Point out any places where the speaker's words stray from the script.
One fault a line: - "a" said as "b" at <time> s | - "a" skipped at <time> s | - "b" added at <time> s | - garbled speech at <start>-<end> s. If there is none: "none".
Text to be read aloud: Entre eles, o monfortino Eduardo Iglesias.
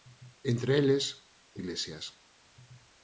- "monfortino Eduardo" skipped at 1.6 s